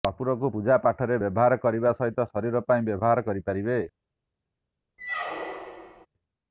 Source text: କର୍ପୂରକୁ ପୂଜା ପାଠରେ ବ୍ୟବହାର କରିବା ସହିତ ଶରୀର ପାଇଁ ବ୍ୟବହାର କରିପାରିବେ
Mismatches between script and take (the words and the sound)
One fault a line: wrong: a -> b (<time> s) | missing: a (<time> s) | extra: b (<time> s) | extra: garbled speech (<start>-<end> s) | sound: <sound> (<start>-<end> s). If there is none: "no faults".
sound: squeak (5.0-6.1 s)